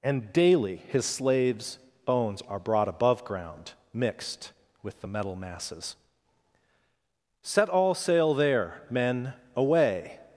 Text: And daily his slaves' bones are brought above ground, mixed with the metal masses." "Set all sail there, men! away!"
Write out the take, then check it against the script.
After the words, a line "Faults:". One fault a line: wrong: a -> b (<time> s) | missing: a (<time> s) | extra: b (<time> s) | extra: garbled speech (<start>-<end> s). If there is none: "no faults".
And daily his slaves' bones are brought above ground, mixed with the metal masses." "Set all sail there, men! away!"
Faults:
no faults